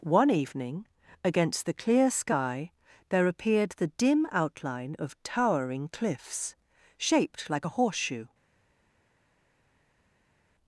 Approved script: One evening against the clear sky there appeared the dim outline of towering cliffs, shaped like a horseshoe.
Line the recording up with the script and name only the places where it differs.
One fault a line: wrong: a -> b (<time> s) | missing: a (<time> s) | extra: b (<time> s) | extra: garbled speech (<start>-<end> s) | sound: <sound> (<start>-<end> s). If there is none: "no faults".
no faults